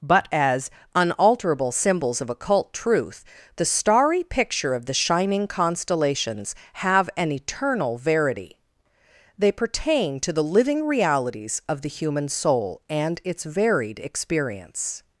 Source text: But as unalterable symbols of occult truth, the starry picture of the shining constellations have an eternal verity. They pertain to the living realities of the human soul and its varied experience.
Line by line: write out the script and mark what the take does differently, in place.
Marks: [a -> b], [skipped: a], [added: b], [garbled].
But as unalterable symbols of occult truth, the starry picture of the shining constellations have an eternal verity. They pertain to the living realities of the human soul and its varied experience.